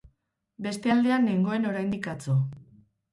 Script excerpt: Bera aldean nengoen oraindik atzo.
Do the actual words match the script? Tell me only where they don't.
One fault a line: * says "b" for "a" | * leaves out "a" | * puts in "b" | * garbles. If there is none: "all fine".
* says "Beste" for "Bera"